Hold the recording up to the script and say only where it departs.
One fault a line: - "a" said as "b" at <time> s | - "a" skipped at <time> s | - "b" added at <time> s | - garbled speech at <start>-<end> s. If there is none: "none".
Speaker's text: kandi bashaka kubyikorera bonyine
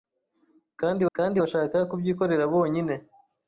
- "kandi" added at 1.2 s